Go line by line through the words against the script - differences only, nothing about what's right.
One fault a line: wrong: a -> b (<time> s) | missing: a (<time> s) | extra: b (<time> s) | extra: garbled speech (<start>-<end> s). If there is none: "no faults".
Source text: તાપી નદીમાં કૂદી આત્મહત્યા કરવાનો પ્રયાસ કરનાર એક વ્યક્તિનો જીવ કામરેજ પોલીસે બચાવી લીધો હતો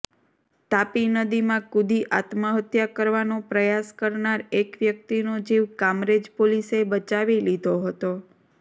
no faults